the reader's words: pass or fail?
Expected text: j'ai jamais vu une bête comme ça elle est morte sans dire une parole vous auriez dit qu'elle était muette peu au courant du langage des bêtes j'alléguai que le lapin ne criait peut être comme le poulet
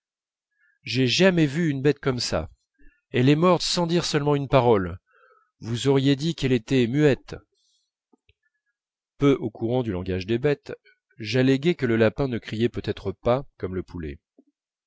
fail